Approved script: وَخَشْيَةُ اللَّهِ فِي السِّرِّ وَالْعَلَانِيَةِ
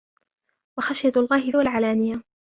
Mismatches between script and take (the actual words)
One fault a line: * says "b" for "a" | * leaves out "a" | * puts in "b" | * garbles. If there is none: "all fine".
* leaves out "فِي السِّرِّ"